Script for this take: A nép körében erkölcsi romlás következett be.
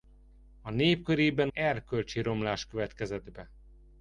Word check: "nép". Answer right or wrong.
right